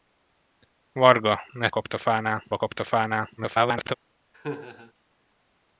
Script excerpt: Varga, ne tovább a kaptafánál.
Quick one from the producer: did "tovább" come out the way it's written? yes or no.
no